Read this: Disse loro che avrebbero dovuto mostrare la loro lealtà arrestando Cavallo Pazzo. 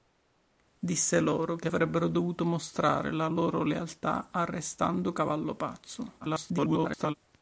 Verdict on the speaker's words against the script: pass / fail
fail